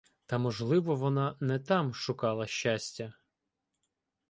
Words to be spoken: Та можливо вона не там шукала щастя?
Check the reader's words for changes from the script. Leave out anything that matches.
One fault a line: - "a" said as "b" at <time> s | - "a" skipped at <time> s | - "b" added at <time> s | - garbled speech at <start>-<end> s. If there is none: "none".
none